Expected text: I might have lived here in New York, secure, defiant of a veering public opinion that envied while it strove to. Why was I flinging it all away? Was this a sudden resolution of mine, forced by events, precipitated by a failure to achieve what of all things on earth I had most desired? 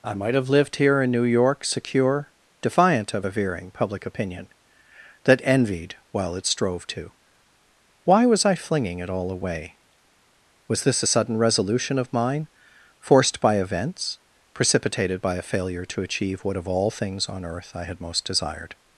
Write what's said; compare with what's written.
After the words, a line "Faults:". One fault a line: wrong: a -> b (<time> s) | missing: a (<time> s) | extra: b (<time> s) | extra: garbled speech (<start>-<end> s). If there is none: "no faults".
I might have lived here in New York, secure, defiant of a veering public opinion that envied while it strove to. Why was I flinging it all away? Was this a sudden resolution of mine, forced by events, precipitated by a failure to achieve what of all things on earth I had most desired?
Faults:
no faults